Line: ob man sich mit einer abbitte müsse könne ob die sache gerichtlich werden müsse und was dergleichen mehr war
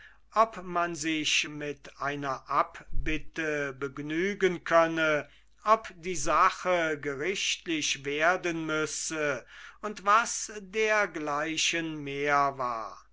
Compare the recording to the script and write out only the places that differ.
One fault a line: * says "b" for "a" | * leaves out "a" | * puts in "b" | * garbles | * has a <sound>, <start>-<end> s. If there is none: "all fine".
* says "begnügen" for "müsse"